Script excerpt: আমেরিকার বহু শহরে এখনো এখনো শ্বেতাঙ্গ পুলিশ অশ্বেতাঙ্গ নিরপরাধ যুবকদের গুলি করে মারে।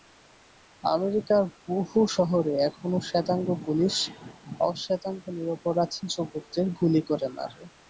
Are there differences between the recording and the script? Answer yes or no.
yes